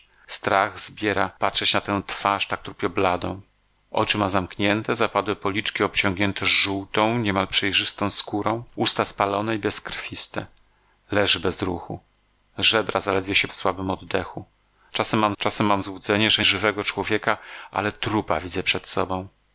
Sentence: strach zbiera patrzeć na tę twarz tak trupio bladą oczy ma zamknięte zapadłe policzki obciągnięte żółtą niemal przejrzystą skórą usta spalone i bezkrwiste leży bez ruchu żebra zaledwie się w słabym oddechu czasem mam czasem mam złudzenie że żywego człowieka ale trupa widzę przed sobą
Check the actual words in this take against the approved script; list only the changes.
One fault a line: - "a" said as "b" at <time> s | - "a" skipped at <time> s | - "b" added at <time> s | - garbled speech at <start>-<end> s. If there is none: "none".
none